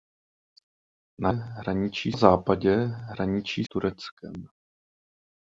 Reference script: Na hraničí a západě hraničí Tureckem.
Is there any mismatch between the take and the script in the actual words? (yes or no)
no